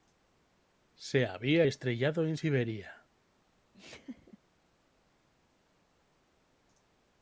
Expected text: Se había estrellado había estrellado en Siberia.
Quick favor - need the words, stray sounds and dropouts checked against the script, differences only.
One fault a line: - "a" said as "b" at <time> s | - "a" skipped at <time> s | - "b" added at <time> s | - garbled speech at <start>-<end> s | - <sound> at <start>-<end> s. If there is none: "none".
- "había estrellado" skipped at 2.2 s
- laugh at 3.7-4.4 s